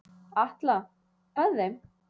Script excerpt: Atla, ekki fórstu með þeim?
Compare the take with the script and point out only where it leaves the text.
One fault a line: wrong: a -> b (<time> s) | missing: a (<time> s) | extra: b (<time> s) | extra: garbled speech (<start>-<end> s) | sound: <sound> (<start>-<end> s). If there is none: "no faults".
missing: ekki fórstu (0.8 s)